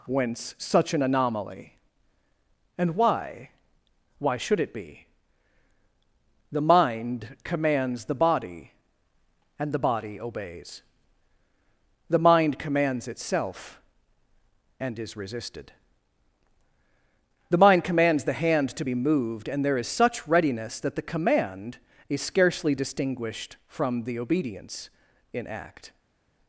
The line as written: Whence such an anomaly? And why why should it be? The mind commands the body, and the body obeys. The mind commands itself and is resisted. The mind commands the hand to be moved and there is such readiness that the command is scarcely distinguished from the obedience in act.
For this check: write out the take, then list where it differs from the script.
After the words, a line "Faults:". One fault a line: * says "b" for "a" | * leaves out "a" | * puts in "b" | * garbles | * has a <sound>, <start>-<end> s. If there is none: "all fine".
Whence such an anomaly? And why why should it be? The mind commands the body, and the body obeys. The mind commands itself and is resisted. The mind commands the hand to be moved and there is such readiness that the command is scarcely distinguished from the obedience in act.
Faults:
all fine